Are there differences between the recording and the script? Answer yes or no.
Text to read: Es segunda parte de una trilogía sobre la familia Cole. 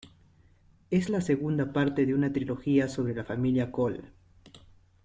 yes